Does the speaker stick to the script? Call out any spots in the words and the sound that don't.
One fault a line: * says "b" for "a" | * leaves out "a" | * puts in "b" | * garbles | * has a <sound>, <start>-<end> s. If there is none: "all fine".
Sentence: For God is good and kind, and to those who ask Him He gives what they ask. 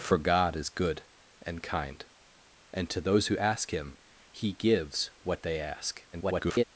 * garbles